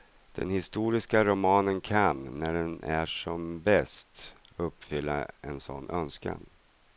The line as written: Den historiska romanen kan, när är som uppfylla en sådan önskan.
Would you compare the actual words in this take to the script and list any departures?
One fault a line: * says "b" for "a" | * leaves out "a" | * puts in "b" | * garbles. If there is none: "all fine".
* puts in "den"
* puts in "bäst"